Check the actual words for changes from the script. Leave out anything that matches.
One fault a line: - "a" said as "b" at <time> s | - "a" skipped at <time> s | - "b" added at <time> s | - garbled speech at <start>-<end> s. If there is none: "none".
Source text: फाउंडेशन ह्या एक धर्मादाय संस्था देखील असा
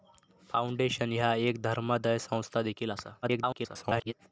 - garbled speech at 3.2-4.1 s